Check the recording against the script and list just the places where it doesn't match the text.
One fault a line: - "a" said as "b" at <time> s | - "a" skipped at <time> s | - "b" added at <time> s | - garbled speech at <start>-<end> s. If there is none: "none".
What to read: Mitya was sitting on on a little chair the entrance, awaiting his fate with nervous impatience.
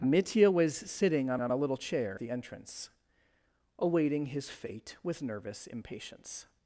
none